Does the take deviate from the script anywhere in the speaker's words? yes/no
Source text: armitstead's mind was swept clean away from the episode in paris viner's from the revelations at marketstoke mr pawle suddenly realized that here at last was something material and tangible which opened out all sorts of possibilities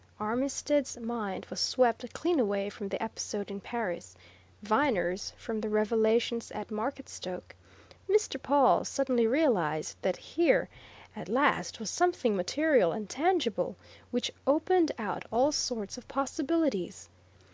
no